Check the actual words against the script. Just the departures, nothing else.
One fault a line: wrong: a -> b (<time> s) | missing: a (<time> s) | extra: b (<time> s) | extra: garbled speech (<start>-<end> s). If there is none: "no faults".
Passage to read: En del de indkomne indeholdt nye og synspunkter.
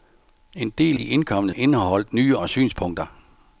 no faults